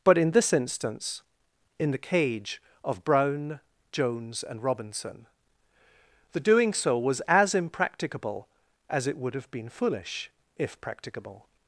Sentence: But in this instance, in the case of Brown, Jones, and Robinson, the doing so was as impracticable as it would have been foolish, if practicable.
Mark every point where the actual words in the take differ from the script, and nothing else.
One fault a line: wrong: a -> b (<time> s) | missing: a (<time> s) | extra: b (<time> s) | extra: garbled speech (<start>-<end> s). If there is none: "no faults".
wrong: case -> cage (2.0 s)